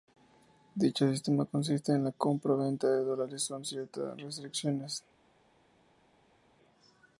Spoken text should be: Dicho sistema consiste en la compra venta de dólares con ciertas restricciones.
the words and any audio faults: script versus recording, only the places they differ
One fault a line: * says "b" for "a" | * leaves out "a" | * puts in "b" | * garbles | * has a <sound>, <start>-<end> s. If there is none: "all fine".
all fine